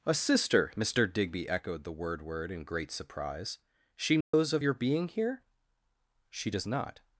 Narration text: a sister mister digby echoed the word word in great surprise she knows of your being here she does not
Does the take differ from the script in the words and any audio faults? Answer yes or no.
yes